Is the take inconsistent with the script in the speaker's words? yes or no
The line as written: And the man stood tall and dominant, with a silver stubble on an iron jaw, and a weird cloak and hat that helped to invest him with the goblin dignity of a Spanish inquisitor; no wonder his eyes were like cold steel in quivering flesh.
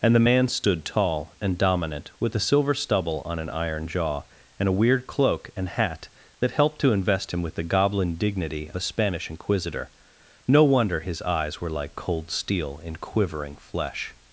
yes